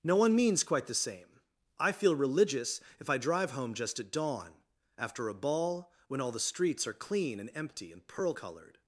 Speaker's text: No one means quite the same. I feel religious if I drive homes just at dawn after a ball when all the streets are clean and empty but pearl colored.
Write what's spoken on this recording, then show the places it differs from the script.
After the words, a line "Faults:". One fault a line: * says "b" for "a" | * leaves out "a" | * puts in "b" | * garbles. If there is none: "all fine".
No one means quite the same. I feel religious if I drive home just at dawn after a ball when all the streets are clean and empty and pearl colored.
Faults:
* says "home" for "homes"
* says "and" for "but"